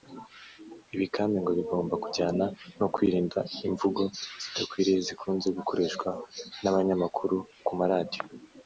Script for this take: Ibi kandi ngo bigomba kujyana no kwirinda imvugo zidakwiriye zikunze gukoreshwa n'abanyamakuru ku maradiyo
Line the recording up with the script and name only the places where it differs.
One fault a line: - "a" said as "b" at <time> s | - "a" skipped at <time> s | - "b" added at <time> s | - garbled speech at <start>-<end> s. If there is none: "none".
none